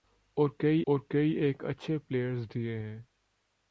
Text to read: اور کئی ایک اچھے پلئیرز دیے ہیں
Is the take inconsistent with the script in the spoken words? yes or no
yes